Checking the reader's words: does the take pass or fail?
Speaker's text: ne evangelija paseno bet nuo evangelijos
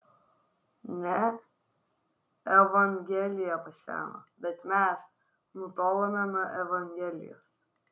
fail